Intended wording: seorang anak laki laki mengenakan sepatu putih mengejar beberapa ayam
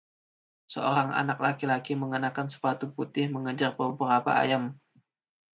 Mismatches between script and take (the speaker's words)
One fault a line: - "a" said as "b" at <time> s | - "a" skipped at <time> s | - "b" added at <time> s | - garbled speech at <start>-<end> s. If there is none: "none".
none